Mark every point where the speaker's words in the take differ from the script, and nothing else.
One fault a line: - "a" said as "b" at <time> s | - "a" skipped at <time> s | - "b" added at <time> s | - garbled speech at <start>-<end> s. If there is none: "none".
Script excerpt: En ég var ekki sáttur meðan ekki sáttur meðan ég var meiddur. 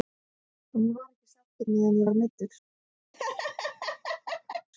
- "ekki sáttur meðan" skipped at 2.0 s